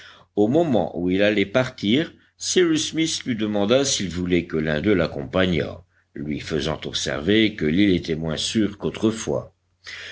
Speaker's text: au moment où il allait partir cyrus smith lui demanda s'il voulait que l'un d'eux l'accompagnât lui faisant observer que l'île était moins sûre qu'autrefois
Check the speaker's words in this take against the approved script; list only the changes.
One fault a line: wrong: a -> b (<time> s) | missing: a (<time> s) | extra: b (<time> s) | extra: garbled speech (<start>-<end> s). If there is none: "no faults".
no faults